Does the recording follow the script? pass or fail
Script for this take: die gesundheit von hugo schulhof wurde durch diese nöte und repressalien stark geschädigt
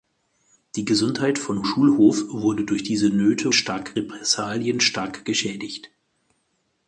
fail